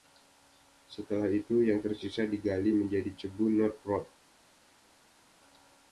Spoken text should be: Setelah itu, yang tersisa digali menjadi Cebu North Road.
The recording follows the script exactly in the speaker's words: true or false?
true